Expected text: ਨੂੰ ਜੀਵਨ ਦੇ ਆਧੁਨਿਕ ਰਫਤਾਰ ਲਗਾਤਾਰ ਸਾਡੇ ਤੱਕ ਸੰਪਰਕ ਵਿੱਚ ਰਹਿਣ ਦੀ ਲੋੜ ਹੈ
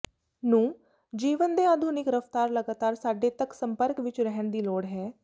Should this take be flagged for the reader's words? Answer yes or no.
no